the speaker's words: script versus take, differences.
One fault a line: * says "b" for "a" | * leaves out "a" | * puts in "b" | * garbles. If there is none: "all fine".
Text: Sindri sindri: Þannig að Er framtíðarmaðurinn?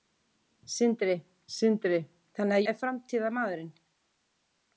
all fine